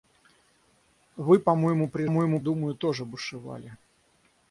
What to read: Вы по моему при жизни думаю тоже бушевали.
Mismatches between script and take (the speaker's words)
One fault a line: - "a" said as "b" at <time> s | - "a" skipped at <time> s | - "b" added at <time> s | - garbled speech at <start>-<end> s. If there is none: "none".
- "жизни" said as "моему" at 2.1 s